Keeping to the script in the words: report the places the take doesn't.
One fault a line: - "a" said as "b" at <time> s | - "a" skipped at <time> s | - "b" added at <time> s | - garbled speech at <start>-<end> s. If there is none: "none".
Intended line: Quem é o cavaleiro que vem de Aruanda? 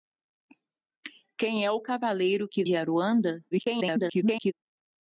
- "vem" skipped at 2.6 s
- garbled speech at 3.5-4.5 s